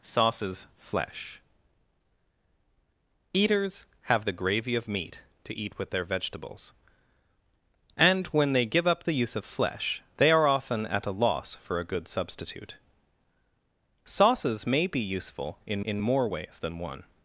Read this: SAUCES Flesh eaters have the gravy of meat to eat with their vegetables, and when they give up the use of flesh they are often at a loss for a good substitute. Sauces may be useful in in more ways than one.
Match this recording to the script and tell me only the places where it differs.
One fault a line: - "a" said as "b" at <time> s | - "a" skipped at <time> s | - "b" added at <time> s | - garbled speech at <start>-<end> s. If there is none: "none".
none